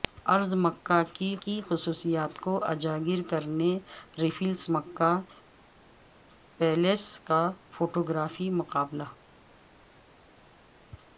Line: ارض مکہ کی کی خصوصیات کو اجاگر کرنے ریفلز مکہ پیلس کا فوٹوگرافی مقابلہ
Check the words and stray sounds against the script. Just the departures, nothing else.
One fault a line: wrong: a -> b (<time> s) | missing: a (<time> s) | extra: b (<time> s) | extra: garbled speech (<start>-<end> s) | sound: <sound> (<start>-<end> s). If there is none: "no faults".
no faults